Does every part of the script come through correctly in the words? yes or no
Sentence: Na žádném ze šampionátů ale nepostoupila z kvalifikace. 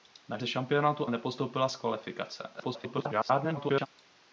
no